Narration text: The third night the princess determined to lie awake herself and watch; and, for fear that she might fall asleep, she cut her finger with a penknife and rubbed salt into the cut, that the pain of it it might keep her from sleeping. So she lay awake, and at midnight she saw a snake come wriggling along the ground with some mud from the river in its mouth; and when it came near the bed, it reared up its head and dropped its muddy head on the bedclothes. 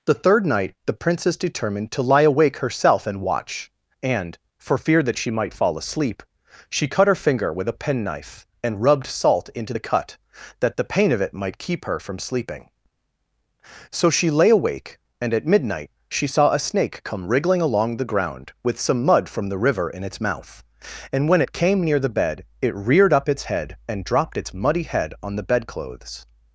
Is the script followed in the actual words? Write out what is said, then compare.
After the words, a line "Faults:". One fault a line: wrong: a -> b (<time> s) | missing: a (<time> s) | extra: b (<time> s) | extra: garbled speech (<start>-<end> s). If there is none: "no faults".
The third night the princess determined to lie awake herself and watch; and, for fear that she might fall asleep, she cut her finger with a penknife and rubbed salt into the cut, that the pain of it might keep her from sleeping. So she lay awake, and at midnight she saw a snake come wriggling along the ground with some mud from the river in its mouth; and when it came near the bed, it reared up its head and dropped its muddy head on the bedclothes.
Faults:
missing: it (11.3 s)